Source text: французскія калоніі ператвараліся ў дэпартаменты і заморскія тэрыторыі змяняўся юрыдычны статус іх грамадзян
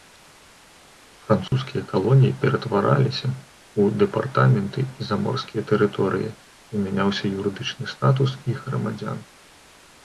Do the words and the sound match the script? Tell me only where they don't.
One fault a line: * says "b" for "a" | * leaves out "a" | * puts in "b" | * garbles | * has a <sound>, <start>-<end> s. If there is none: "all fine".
* has a dropout, 1.5-1.5 s